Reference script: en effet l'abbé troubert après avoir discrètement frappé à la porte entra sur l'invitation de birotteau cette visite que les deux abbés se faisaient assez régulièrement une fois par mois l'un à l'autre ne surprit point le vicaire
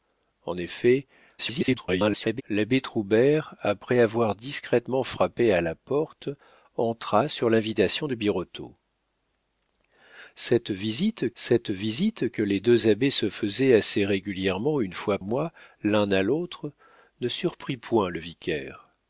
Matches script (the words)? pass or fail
fail